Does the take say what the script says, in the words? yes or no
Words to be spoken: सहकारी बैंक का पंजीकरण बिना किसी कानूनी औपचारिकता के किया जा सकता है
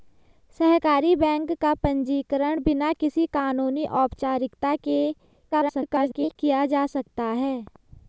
no